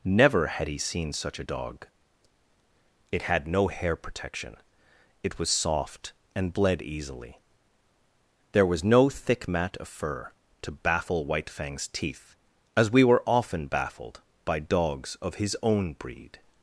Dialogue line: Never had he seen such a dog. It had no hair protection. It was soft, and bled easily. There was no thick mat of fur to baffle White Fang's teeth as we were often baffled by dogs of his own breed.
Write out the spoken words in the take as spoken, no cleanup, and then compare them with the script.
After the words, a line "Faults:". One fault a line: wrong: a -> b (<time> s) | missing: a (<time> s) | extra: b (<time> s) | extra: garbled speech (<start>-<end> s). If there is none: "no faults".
Never had he seen such a dog. It had no hair protection. It was soft, and bled easily. There was no thick mat of fur to baffle White Fang's teeth as we were often baffled by dogs of his own breed.
Faults:
no faults